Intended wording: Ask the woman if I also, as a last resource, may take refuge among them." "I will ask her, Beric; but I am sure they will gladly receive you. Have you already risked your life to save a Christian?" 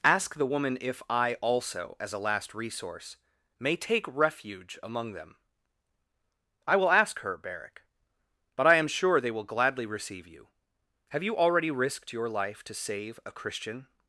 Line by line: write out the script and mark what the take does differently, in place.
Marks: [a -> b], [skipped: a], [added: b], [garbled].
Ask the woman if I also, as a last resource, may take refuge among them." "I will ask her, Beric; but I am sure they will gladly receive you. Have you already risked your life to save a Christian?"